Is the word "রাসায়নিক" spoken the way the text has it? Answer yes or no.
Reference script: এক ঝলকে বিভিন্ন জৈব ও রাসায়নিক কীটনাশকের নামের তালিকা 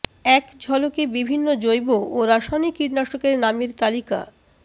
yes